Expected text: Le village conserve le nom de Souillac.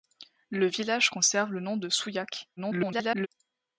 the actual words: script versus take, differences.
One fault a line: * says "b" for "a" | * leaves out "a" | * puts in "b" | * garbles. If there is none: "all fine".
* garbles